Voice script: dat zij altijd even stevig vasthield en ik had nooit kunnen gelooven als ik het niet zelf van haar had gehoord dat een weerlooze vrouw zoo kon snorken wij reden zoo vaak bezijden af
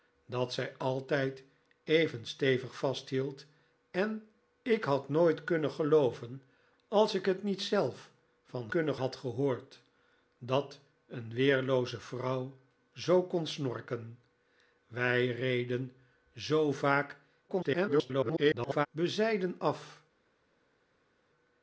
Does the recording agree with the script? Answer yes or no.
no